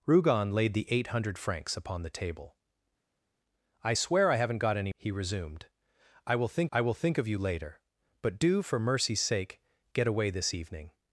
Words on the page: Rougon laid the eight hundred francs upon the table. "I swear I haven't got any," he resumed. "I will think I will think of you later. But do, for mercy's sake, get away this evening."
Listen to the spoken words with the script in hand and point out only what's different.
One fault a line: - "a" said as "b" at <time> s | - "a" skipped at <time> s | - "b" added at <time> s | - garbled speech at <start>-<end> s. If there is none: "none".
none